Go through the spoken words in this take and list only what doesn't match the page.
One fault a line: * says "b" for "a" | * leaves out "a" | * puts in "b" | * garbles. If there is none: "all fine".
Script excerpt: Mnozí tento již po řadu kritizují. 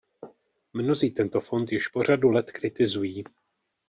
* puts in "fond"
* puts in "let"